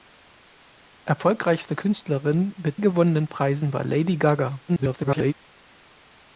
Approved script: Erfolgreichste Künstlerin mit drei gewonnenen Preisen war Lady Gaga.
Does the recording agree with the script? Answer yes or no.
no